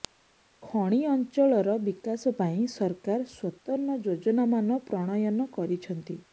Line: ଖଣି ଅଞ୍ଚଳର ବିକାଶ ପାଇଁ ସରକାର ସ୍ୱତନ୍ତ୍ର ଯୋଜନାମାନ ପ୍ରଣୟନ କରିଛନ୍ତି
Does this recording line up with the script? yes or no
yes